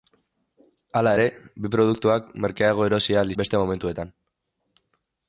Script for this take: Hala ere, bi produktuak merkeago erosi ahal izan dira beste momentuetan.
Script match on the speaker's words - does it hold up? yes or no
no